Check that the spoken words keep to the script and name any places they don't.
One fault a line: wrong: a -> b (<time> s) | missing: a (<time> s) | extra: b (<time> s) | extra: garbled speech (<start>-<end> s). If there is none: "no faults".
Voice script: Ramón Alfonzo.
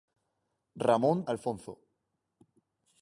no faults